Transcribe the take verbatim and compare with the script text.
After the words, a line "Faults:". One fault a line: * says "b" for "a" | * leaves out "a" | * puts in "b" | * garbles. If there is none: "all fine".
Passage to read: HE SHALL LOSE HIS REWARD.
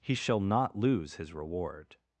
HE SHALL NOT LOSE HIS REWARD.
Faults:
* puts in "NOT"